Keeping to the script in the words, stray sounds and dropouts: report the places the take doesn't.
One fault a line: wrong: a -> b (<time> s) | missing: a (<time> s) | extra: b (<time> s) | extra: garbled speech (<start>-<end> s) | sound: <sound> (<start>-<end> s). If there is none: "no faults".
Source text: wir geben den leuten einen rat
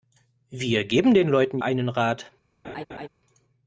sound: laugh (2.6-3.1 s)